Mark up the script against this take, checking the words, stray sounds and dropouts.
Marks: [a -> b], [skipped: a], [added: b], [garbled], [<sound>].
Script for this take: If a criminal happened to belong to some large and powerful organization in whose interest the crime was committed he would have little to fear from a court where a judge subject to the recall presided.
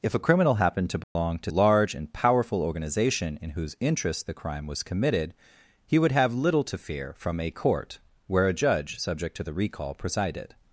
If a criminal happened to belong [dropout] to [skipped: some] large and powerful organization in whose interest the crime was committed he would have little to fear from a court where a judge subject to the recall presided.